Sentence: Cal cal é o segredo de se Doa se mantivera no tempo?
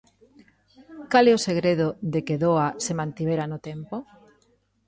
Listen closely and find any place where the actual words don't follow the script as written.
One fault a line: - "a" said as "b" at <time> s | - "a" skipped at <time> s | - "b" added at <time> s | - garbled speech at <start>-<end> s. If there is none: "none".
- "cal" skipped at 1.2 s
- "se" said as "que" at 2.3 s